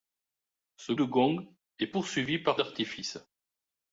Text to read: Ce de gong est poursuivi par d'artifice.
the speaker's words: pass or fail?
pass